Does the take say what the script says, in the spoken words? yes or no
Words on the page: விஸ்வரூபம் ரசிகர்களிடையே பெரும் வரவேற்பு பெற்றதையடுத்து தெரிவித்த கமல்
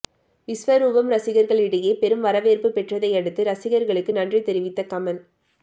no